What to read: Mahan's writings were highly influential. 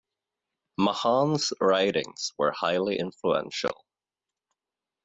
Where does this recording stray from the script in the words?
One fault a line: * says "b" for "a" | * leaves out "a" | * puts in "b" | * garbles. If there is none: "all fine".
all fine